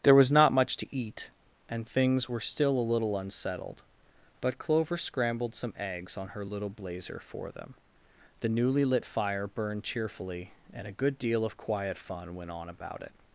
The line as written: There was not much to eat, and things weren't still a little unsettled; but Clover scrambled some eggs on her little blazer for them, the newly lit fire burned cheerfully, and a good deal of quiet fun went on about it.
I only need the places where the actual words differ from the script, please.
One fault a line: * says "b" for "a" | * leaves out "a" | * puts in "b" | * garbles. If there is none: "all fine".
* says "were" for "weren't"